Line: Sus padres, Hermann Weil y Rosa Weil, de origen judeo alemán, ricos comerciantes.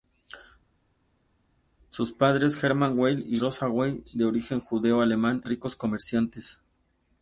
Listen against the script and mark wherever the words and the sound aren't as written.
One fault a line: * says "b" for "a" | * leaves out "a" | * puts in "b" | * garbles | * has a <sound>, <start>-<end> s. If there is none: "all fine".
all fine